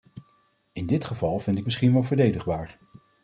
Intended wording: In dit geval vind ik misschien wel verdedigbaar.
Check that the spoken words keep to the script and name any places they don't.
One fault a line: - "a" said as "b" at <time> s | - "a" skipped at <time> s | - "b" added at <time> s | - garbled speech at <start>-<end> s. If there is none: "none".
none